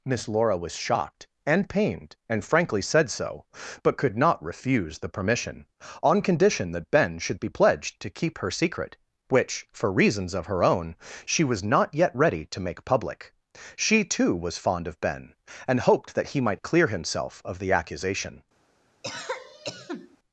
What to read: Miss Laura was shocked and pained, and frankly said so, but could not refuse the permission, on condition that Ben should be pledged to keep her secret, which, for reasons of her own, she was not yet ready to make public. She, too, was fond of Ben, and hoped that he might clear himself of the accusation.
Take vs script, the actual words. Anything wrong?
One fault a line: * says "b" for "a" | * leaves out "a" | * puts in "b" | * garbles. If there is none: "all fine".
all fine